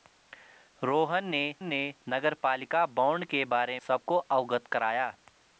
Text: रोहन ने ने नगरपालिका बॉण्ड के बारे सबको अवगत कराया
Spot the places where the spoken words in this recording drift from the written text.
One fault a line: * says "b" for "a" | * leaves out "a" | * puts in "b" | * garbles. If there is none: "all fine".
all fine